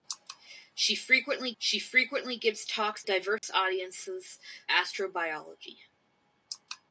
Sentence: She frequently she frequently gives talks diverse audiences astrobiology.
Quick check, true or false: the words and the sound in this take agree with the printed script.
false